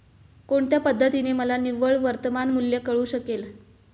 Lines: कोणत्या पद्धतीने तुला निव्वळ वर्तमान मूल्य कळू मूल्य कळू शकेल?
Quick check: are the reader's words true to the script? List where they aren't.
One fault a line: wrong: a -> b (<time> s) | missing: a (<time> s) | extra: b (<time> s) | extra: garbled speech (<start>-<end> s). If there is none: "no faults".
wrong: तुला -> मला (1.3 s)
missing: मूल्य कळू (3.0 s)